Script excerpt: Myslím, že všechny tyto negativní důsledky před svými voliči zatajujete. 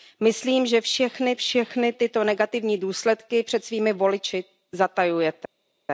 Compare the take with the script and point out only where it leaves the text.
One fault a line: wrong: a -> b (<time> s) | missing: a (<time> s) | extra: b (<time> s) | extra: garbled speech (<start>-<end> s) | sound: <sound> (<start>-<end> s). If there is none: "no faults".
extra: všechny (1.4 s)